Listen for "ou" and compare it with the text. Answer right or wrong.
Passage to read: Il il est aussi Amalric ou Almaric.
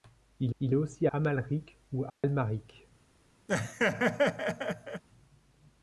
right